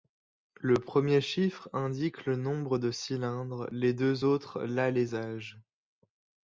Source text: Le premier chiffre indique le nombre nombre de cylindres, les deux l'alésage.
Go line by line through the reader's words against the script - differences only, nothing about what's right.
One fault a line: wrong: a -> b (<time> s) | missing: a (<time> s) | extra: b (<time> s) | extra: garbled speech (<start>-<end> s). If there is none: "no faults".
missing: nombre (2.8 s)
extra: autres (4.2 s)